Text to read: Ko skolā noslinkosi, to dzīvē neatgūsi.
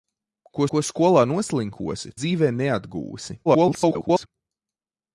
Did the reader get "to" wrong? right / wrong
wrong